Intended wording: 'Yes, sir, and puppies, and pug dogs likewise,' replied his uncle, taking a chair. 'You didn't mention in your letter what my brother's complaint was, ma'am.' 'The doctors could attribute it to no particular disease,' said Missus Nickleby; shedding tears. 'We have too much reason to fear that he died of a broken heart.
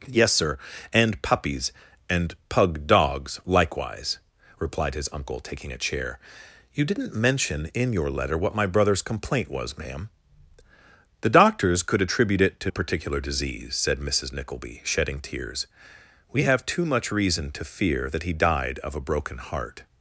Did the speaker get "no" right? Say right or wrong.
wrong